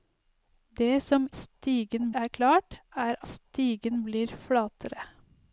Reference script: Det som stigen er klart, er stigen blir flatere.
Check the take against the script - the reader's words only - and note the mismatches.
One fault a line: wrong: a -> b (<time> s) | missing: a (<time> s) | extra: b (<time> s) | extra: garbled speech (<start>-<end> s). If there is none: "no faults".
no faults